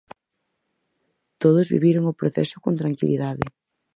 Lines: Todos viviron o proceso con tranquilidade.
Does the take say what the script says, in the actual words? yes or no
yes